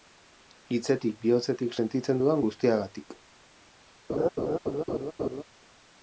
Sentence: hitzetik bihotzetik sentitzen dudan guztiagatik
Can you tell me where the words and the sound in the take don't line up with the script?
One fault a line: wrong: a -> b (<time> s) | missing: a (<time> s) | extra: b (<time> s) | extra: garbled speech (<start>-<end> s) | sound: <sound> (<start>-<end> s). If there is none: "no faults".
sound: laugh (4.1-5.4 s)